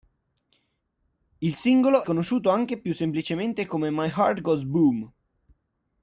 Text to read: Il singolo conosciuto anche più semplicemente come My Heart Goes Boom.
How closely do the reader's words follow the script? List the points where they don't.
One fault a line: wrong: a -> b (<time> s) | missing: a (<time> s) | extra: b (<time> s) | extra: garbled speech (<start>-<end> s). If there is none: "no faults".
no faults